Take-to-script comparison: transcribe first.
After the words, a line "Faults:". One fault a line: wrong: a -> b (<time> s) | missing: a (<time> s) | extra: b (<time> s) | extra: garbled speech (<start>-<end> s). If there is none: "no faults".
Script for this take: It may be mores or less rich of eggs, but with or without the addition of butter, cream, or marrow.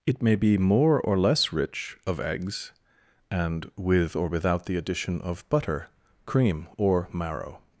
It may be more or less rich of eggs, and with or without the addition of butter, cream, or marrow.
Faults:
wrong: mores -> more (0.6 s)
wrong: but -> and (3.3 s)